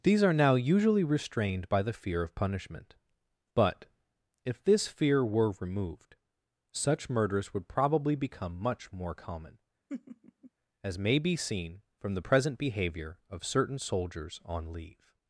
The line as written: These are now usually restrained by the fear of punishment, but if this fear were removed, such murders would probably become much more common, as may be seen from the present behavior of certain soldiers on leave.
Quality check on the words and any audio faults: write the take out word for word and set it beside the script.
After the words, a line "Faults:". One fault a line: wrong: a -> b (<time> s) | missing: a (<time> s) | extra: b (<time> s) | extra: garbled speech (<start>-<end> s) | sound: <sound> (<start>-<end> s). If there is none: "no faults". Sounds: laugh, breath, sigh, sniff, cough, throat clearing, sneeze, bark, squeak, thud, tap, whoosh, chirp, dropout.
These are now usually restrained by the fear of punishment, but if this fear were removed, such murders would probably become much more common, as may be seen from the present behavior of certain soldiers on leave.
Faults:
sound: laugh (9.9-10.5 s)